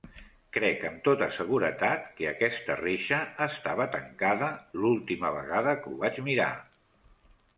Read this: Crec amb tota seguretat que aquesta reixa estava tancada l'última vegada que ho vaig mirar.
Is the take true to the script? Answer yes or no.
yes